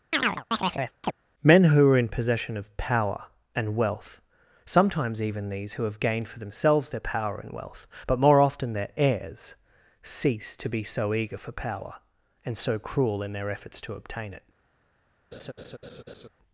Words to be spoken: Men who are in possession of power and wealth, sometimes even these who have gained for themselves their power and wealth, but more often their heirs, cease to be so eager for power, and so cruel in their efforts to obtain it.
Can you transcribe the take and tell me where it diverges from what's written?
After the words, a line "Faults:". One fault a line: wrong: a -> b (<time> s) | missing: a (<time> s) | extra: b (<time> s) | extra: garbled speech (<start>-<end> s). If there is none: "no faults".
Men who are in possession of power and wealth, sometimes even these who have gained for themselves their power and wealth, but more often their heirs, cease to be so eager for power, and so cruel in their efforts to obtain it.
Faults:
no faults